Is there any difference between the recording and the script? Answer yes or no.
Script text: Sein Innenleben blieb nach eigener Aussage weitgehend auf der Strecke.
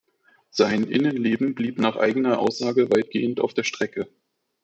no